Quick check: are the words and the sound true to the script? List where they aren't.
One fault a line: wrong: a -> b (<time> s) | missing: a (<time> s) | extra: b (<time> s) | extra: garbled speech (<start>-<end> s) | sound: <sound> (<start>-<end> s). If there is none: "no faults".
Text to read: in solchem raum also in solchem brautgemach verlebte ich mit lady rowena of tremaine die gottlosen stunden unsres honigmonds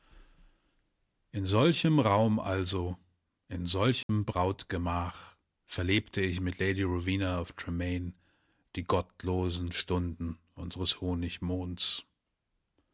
sound: dropout (4.0-4.1 s)